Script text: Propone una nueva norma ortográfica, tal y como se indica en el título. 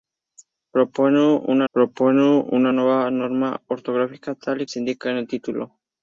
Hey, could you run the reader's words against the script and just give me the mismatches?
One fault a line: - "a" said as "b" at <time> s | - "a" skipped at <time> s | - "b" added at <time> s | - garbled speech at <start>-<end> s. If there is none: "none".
- "propone una" added at 1.7 s
- "como" skipped at 4.7 s